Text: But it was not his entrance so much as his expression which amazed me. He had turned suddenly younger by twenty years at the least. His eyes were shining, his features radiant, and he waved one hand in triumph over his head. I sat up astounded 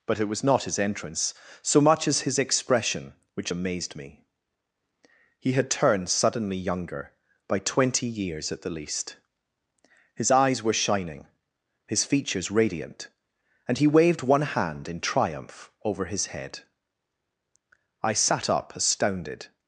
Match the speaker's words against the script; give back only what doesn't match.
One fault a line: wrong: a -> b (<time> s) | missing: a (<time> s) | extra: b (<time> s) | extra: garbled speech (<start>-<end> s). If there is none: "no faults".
no faults